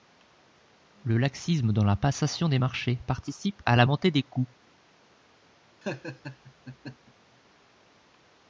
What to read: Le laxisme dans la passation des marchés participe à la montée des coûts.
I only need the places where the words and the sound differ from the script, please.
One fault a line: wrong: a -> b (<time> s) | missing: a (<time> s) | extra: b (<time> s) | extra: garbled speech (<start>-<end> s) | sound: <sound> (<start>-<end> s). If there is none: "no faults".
sound: laugh (5.8-7.1 s)